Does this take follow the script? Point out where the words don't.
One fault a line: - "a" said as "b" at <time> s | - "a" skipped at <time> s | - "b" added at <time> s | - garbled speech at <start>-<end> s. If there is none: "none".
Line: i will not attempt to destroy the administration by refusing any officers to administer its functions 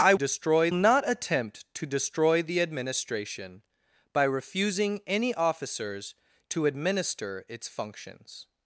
- "will" said as "destroy" at 0.1 s